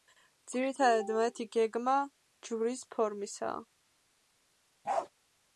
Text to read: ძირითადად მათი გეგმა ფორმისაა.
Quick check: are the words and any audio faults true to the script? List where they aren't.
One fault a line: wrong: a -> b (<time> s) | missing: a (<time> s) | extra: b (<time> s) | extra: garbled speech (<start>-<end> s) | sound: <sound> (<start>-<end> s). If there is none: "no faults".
extra: ჯვრის (2.5 s)
sound: bark (4.8-5.1 s)